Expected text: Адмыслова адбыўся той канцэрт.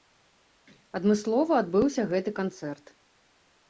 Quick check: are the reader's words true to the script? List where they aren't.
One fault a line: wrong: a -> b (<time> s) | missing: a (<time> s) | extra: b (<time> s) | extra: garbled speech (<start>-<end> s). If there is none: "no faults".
wrong: той -> гэты (2.2 s)